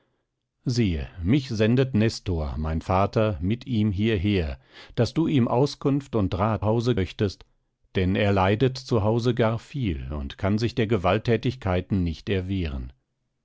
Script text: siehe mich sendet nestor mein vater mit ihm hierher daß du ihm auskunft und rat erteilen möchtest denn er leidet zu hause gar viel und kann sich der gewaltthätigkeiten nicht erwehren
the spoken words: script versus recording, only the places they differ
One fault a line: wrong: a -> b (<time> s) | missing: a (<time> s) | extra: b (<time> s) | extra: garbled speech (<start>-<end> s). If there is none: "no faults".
wrong: erteilen -> hause (6.6 s)